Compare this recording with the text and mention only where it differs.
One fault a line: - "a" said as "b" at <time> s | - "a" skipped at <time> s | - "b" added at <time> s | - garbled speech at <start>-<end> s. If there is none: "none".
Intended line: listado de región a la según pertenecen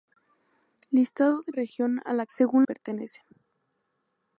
none